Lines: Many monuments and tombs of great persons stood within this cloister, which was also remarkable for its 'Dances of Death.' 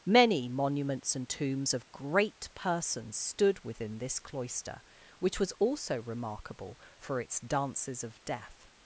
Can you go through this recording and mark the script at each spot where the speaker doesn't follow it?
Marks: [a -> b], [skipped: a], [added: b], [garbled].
Many monuments and tombs of great persons stood within this cloister, which was also remarkable for its 'Dances of Death.'